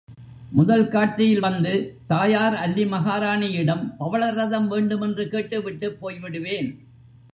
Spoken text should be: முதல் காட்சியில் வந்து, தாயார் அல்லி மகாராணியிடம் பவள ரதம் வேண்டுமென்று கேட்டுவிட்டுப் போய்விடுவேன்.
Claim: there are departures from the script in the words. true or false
false